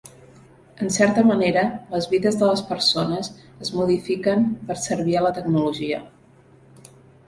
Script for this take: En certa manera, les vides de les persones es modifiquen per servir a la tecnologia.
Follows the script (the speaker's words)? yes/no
yes